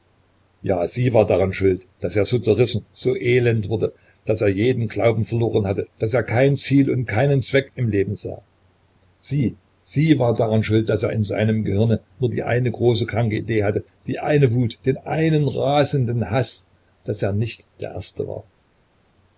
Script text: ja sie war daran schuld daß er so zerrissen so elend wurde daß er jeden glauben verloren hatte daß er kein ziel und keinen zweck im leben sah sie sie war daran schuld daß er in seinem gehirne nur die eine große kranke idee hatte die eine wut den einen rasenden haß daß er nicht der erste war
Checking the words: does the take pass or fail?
pass